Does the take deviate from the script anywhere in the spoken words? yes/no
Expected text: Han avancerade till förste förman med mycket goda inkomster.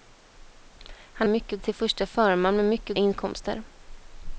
yes